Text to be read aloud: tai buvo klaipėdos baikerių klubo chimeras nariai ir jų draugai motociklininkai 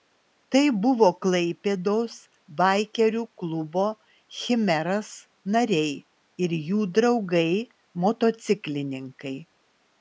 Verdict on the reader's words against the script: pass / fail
pass